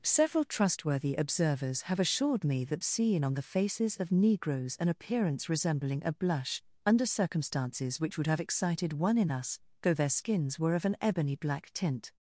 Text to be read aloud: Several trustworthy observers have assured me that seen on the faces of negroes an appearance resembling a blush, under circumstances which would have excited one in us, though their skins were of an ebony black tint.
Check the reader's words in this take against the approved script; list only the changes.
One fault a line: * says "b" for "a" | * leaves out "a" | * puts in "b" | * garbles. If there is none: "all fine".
all fine